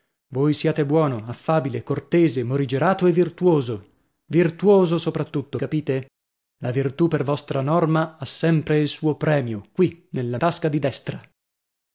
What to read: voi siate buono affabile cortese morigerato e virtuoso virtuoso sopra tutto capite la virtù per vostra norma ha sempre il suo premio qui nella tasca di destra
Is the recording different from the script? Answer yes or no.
no